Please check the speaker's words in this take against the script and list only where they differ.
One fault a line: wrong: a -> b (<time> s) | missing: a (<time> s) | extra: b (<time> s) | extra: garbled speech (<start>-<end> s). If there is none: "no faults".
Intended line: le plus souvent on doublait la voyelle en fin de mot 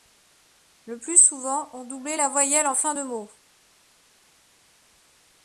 no faults